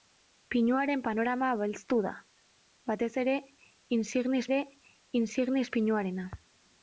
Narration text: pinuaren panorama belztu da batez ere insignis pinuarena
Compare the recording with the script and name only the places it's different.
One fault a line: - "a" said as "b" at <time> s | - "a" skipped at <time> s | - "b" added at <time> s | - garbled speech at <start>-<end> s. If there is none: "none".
- "ere insignis" added at 4.5 s